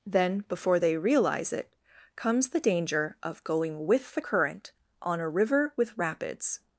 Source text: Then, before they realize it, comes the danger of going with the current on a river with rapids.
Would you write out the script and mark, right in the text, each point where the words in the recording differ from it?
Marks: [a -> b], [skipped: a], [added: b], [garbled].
Then, before they realize it, comes the danger of going with the current on a river with rapids.